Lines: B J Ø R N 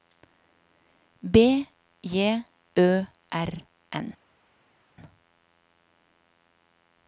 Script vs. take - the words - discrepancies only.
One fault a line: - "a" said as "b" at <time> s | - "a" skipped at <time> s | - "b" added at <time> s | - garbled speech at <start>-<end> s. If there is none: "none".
none